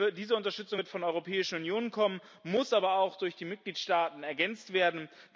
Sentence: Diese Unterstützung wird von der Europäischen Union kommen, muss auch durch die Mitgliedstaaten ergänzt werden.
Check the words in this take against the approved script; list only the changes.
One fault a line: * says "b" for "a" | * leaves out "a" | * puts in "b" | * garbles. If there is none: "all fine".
* puts in "aber"